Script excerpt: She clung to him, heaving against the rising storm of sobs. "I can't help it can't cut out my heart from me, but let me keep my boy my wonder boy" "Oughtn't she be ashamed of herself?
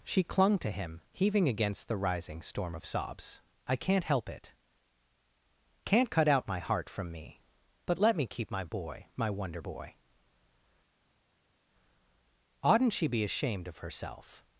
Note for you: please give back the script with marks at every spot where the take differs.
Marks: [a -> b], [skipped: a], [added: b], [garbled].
She clung to him, heaving against the rising storm of sobs. "I can't help it can't cut out my heart from me, but let me keep my boy my wonder boy" "Oughtn't she be ashamed of herself?